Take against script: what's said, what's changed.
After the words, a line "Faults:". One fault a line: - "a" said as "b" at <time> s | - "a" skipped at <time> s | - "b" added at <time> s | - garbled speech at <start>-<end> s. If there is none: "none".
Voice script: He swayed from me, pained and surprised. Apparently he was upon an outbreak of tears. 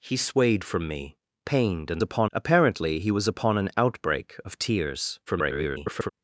He swayed from me, pained and upon. Apparently he was upon an outbreak of tears. [garbled]
Faults:
- "surprised" said as "upon" at 2.0 s
- garbled speech at 5.3-6.1 s